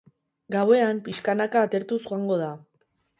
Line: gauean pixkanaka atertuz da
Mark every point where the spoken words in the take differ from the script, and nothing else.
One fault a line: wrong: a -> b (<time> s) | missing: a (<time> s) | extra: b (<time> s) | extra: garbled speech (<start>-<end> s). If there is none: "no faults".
extra: joango (2.1 s)